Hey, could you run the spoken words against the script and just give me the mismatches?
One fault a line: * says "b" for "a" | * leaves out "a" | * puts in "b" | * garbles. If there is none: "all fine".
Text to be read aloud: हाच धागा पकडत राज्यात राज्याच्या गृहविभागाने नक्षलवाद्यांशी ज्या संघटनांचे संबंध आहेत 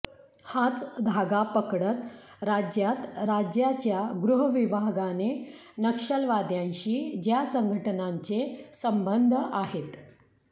all fine